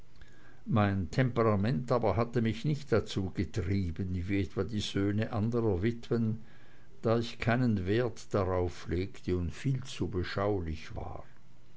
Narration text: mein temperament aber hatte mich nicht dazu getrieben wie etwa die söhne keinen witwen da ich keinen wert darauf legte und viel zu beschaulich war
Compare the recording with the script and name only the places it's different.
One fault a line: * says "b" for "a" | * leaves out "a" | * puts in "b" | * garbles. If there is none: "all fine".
* says "anderer" for "keinen"